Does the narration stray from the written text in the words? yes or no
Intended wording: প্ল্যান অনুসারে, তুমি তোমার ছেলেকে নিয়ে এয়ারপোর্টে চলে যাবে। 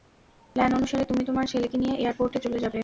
no